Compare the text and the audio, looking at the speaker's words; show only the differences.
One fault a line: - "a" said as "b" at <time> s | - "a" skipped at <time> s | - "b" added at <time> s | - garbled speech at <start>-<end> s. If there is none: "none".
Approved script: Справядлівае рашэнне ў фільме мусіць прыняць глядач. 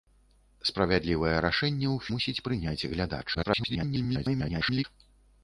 - "фільме" skipped at 2.1 s
- garbled speech at 3.3-4.8 s